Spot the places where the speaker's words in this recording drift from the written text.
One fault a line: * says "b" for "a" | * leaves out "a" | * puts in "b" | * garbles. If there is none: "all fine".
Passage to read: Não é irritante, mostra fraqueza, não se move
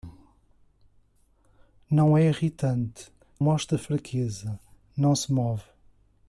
all fine